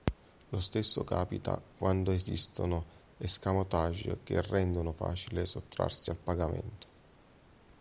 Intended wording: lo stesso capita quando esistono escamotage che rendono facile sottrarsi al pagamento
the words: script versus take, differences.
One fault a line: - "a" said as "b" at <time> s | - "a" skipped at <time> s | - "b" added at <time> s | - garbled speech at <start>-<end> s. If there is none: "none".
none